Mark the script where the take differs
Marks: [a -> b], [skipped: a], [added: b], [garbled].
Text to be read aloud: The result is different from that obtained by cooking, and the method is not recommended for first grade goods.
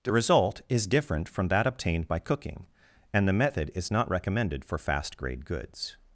The result is different from that obtained by cooking, and the method is not recommended for [first -> fast] grade goods.